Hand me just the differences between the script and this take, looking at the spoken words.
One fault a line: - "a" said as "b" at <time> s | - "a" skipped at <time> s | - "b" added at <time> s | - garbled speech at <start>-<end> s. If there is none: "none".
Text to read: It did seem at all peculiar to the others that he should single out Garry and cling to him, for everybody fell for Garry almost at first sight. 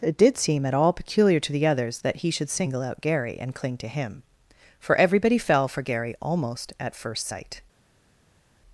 none